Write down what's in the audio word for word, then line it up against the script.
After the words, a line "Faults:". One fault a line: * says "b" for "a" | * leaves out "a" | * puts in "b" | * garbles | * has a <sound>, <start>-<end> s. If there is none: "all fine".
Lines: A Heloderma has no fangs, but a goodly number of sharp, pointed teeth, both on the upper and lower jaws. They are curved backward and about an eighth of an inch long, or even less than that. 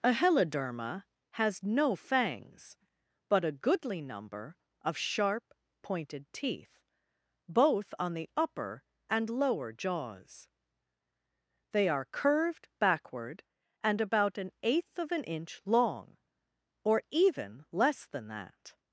A Heloderma has no fangs, but a goodly number of sharp, pointed teeth, both on the upper and lower jaws. They are curved backward and about an eighth of an inch long, or even less than that.
Faults:
all fine